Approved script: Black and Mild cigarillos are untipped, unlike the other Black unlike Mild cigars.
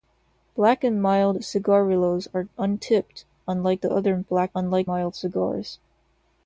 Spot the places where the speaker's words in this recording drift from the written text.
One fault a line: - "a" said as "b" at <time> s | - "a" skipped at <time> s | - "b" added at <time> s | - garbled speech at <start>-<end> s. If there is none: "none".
none